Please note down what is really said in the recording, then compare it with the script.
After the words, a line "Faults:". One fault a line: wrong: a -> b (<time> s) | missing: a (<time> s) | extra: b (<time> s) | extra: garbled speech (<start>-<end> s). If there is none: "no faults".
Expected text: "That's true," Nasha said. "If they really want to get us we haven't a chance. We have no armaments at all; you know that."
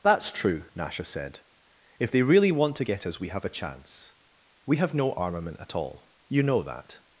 "That's true," Nasha said. "If they really want to get us we have a chance. We have no armament at all; you know that."
Faults:
wrong: haven't -> have (3.3 s)
wrong: armaments -> armament (5.1 s)